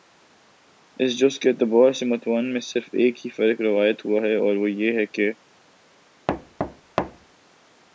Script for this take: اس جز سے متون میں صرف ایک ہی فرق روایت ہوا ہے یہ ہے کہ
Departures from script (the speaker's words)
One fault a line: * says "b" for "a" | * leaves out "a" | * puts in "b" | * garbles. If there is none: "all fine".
* puts in "کے اعتبار"
* puts in "اور وہ"